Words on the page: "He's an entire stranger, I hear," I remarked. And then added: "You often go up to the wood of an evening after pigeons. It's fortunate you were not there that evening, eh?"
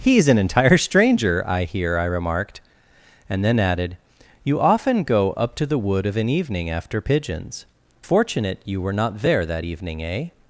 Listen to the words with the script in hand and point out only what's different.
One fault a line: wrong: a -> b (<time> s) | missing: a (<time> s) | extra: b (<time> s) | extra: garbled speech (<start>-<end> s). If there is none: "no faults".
missing: It's (7.7 s)